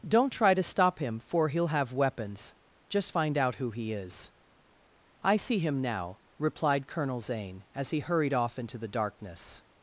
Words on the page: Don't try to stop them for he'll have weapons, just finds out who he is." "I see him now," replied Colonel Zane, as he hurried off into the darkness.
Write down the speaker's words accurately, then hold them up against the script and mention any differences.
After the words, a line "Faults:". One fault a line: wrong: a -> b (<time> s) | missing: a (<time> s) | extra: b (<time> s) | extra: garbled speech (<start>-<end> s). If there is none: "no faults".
Don't try to stop him for he'll have weapons, just find out who he is." "I see him now," replied Colonel Zane, as he hurried off into the darkness.
Faults:
wrong: them -> him (1.0 s)
wrong: finds -> find (3.1 s)